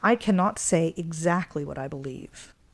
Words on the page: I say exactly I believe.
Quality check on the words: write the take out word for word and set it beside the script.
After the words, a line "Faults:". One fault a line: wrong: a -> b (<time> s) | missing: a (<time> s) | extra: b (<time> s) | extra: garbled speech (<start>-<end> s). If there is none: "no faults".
I cannot say exactly what I believe.
Faults:
extra: cannot (0.1 s)
extra: what (1.6 s)